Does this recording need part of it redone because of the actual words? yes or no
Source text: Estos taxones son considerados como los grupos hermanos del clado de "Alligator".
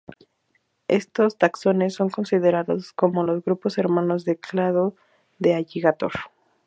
no